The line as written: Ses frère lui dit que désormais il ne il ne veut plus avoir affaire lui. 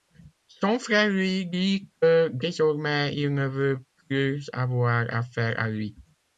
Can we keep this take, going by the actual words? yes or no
no